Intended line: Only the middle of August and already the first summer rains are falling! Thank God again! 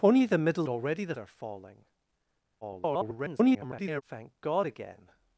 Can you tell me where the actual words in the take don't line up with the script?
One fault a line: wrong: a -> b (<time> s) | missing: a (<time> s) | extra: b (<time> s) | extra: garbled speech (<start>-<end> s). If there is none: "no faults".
missing: of August and (0.7 s)
missing: first summer rains (1.2 s)
extra: garbled speech (2.6-4.0 s)